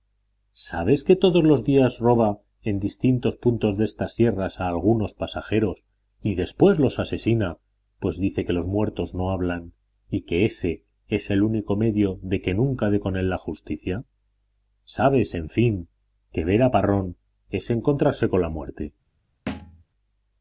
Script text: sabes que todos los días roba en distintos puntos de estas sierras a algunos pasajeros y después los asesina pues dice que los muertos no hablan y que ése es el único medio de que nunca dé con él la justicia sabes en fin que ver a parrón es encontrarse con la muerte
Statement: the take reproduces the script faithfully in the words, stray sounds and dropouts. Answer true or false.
false